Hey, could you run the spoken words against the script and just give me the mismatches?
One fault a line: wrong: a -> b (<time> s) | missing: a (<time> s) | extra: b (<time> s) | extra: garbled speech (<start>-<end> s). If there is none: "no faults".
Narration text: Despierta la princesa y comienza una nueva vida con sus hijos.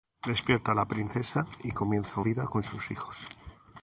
missing: una nueva (2.2 s)